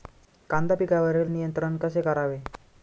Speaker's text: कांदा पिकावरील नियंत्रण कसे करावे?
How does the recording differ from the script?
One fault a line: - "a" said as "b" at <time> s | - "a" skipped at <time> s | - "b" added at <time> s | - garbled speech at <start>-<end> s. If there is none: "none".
none